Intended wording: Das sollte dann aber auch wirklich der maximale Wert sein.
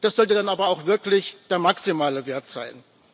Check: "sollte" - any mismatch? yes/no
no